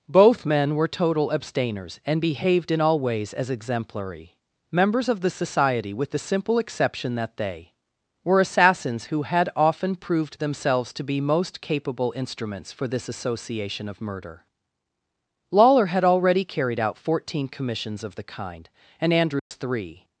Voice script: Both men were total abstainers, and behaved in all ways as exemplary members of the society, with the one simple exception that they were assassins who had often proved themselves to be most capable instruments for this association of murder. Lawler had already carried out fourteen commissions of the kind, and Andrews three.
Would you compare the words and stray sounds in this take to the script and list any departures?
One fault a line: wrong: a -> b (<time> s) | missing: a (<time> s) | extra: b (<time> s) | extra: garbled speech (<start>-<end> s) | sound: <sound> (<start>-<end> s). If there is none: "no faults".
missing: one (6.2 s)
sound: dropout (19.4-19.5 s)